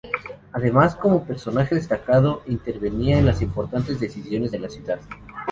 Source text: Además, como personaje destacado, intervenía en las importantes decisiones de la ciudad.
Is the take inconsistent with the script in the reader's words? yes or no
no